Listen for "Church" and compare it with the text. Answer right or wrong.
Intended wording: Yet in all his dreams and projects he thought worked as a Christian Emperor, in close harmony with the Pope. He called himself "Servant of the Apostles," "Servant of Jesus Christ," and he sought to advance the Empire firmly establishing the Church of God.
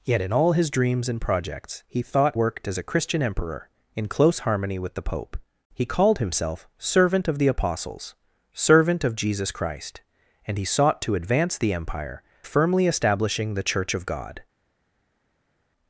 right